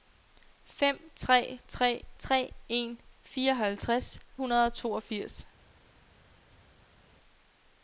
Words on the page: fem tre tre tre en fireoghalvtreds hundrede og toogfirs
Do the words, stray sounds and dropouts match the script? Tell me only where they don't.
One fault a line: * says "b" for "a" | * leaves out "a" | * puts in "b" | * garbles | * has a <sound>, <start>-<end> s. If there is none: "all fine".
all fine